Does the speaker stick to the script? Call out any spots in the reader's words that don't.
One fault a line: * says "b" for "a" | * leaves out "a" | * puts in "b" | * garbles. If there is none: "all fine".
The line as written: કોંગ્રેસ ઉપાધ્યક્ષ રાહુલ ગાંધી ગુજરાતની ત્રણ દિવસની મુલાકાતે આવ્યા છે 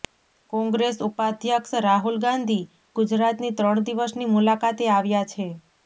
all fine